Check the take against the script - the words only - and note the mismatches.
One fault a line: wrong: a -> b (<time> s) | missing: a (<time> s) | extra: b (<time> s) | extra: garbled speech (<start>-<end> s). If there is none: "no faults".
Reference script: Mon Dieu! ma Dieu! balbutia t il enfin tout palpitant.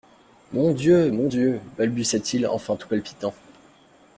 wrong: ma -> mon (1.1 s)